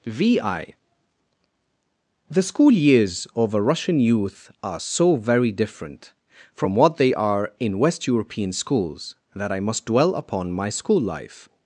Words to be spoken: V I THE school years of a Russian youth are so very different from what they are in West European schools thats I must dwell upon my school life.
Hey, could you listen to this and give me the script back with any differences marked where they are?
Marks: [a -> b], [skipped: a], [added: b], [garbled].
V I THE school years of a Russian youth are so very different from what they are in West European schools [thats -> that] I must dwell upon my school life.